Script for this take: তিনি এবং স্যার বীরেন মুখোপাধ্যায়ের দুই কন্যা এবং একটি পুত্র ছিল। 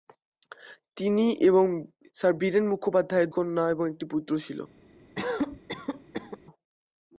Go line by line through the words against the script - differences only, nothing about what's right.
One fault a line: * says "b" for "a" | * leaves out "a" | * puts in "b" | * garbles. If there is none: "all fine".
* leaves out "দুই"